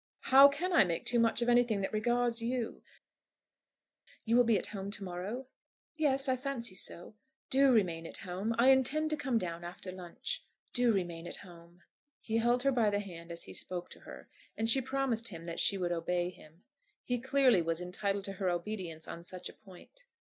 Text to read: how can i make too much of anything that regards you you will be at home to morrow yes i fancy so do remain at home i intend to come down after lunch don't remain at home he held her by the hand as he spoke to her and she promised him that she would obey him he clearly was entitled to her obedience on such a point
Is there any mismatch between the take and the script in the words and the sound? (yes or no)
yes